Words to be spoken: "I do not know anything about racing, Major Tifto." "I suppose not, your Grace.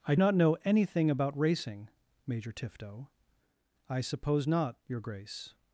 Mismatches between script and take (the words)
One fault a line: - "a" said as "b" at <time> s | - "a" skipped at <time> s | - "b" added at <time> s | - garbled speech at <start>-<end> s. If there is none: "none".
- "do" skipped at 0.1 s